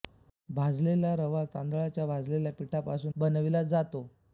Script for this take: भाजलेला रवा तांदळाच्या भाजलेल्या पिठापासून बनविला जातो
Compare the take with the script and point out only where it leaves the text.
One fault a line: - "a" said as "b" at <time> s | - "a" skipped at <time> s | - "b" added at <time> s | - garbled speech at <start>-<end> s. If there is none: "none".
none